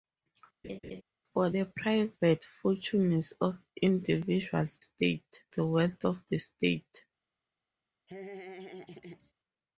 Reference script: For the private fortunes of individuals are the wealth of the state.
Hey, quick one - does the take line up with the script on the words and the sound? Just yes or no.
no